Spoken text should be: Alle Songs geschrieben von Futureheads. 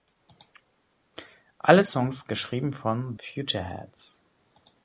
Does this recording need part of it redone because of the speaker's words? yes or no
no